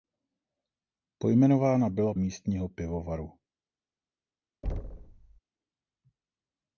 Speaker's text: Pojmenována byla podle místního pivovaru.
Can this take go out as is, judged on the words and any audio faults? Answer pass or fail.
fail